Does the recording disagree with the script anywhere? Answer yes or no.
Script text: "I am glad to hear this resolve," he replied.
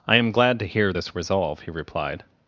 no